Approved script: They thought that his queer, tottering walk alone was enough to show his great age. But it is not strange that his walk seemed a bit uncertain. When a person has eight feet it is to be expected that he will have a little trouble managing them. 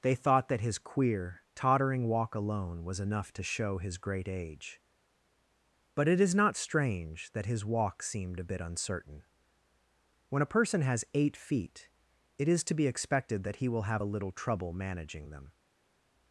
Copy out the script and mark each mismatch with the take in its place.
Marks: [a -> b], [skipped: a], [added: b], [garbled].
They thought that his queer, tottering walk alone was enough to show his great age. But it is not strange that his walk seemed a bit uncertain. When a person has eight feet it is to be expected that he will have a little trouble managing them.